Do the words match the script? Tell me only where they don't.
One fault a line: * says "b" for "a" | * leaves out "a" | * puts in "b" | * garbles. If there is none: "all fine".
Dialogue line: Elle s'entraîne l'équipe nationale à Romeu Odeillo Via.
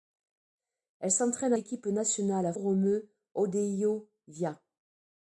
all fine